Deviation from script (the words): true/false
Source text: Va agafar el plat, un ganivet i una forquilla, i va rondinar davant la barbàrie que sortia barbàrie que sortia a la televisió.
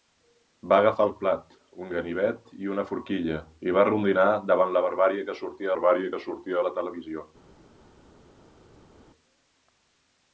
false